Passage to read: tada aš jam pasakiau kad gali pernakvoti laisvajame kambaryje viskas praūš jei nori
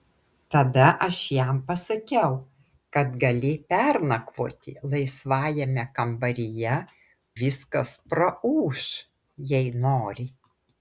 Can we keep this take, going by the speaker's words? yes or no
yes